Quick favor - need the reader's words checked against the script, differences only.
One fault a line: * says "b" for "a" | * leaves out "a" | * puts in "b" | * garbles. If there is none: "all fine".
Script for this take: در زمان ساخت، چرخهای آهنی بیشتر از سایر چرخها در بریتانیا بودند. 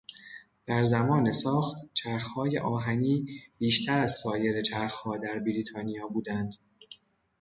all fine